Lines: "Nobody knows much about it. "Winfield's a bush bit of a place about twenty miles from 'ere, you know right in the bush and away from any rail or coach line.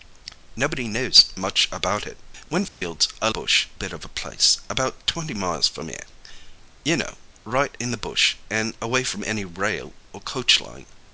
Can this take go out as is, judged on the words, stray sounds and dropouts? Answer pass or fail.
fail